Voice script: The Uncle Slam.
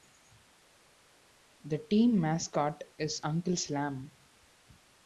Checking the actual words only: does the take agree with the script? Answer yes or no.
no